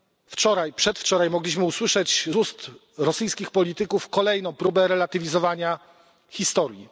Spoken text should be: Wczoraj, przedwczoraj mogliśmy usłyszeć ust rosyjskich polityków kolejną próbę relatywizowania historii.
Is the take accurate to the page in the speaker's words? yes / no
yes